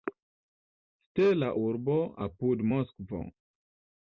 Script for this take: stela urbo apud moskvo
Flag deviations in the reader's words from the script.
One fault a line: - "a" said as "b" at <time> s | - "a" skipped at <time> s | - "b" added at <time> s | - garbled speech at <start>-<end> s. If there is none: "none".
none